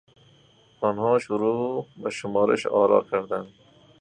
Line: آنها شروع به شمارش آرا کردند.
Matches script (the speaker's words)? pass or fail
pass